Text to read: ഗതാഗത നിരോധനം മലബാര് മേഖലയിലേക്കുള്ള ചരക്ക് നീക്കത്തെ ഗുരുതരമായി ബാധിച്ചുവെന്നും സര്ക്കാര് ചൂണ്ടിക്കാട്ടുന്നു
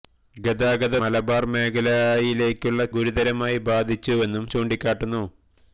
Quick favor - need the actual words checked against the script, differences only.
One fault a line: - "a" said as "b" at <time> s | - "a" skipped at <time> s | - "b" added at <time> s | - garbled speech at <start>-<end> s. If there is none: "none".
- "നിരോധനം" skipped at 0.9 s
- "ചരക്ക് നീക്കത്തെ" skipped at 2.8 s
- "സര്ക്കാര്" skipped at 4.5 s